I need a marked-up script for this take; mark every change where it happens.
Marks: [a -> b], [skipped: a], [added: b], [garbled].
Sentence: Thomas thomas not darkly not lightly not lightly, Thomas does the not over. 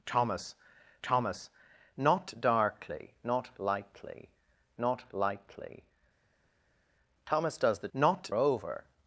Thomas thomas not darkly not lightly not lightly, Thomas does the not over.